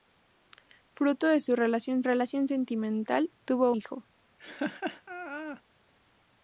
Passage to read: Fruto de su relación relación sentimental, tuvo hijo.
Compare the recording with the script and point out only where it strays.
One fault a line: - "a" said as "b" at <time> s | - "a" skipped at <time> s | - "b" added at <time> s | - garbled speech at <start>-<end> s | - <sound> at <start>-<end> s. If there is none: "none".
- laugh at 4.4-5.6 s